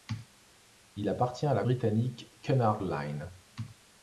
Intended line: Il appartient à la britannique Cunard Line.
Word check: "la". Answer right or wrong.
right